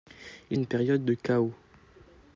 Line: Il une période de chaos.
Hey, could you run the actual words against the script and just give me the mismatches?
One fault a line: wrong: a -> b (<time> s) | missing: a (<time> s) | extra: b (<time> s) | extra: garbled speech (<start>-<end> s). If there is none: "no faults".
no faults